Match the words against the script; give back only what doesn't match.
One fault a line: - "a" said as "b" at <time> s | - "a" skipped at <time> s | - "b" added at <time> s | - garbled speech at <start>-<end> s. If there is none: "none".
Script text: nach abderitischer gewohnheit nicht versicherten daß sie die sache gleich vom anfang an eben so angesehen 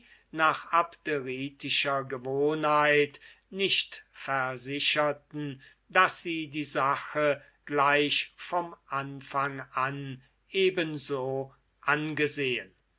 none